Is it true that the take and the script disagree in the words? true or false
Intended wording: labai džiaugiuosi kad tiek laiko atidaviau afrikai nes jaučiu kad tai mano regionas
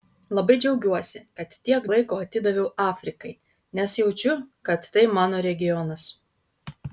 false